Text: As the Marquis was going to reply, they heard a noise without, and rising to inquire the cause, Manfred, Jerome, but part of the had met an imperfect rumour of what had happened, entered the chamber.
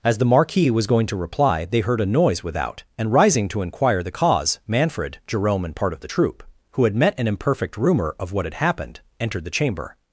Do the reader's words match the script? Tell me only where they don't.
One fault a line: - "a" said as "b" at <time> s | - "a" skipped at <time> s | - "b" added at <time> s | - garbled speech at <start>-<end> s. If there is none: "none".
- "but" said as "and" at 5.6 s
- "troop who" added at 6.0 s